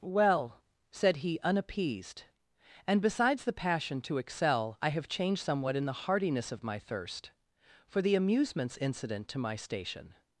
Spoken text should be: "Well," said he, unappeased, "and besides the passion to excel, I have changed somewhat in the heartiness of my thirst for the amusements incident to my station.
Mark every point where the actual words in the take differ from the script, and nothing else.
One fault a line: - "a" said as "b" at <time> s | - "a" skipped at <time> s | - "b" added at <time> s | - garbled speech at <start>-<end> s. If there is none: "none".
none